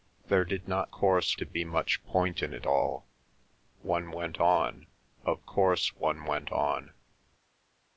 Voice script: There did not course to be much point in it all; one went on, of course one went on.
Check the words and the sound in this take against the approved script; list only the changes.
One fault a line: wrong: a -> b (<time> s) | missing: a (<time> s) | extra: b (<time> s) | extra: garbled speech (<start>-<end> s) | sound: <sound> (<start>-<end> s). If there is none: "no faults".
no faults